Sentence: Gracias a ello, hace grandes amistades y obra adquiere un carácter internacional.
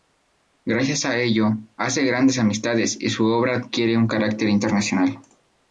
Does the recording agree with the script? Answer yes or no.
no